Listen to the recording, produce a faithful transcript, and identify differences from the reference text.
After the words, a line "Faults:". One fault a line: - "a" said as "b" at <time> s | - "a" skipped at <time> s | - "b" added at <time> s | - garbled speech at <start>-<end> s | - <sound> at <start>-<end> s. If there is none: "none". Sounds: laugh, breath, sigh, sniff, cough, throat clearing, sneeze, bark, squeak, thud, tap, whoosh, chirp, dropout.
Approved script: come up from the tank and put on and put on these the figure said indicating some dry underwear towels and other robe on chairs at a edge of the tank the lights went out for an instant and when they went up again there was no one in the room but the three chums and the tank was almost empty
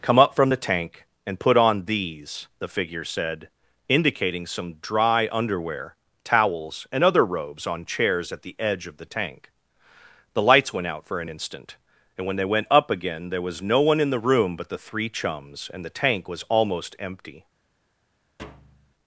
come up from the tank and put on these the figure said indicating some dry underwear towels and other robes on chairs at the edge of the tank the lights went out for an instant and when they went up again there was no one in the room but the three chums and the tank was almost empty
Faults:
- "and put on" skipped at 1.8 s
- "robe" said as "robes" at 7.3 s
- "a" said as "the" at 8.4 s
- thud at 18.4-18.9 s